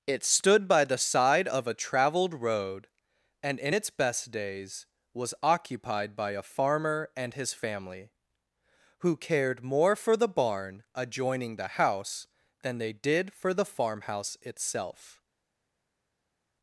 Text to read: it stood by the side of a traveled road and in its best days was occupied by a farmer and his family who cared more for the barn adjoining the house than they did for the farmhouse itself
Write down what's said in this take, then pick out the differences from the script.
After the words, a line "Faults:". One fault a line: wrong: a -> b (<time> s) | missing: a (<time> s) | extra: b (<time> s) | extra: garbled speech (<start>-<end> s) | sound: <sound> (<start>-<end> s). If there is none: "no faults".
it stood by the side of a traveled road and in its best days was occupied by a farmer and his family who cared more for the barn adjoining the house than they did for the farmhouse itself
Faults:
no faults